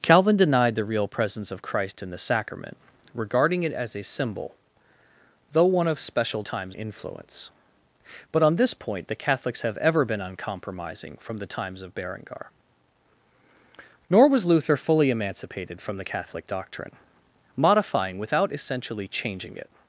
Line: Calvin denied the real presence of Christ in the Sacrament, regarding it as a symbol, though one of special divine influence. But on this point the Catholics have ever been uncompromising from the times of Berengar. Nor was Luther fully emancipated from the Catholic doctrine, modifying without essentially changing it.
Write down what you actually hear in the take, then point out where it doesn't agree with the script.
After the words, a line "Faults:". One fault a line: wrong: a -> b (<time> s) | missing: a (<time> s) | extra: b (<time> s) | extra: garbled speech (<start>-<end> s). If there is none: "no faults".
Calvin denied the real presence of Christ in the Sacrament, regarding it as a symbol, though one of special times influence. But on this point the Catholics have ever been uncompromising from the times of Berengar. Nor was Luther fully emancipated from the Catholic doctrine, modifying without essentially changing it.
Faults:
wrong: divine -> times (6.4 s)